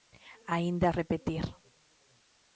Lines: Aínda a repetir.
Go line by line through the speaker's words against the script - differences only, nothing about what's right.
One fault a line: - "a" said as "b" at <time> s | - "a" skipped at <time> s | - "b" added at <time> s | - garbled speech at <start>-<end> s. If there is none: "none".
none